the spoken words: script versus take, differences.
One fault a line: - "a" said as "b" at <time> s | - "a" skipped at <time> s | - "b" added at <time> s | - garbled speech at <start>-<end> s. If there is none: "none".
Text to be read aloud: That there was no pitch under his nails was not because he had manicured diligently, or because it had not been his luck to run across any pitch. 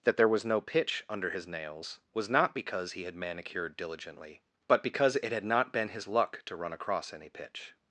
- "or" said as "but" at 4.7 s